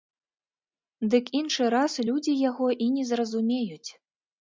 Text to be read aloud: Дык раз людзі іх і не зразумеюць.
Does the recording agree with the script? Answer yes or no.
no